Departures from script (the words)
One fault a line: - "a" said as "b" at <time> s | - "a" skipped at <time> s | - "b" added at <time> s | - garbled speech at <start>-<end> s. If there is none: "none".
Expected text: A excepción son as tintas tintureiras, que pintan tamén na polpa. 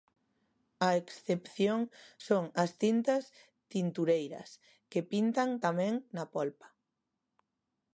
none